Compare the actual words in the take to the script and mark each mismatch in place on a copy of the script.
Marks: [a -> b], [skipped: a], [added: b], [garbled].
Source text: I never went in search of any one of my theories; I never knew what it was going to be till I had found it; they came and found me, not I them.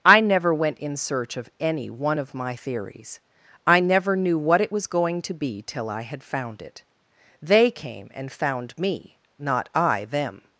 I never went in search of any one of my theories; I never knew what it was going to be till I had found it; they came and found me, not I them.